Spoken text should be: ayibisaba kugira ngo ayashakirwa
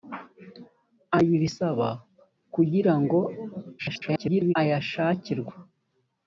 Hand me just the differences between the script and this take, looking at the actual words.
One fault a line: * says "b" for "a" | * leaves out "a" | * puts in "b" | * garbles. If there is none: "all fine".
* garbles